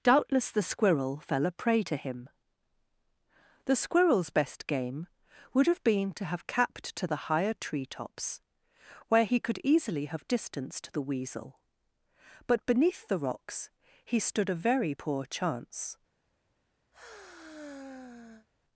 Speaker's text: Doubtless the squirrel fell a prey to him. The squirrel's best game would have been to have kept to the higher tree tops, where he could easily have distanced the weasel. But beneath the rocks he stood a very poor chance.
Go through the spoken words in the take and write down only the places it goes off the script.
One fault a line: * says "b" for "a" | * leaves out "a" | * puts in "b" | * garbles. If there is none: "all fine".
* says "capped" for "kept"